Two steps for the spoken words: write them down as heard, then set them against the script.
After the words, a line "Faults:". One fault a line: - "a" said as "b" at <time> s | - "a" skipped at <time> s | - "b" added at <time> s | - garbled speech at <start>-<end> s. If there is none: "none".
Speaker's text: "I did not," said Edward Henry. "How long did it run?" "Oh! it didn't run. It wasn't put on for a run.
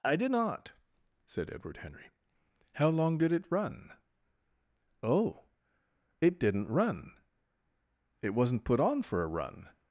"I did not," said Edward Henry. "How long did it run?" "Oh! it didn't run. It wasn't put on for a run.
Faults:
none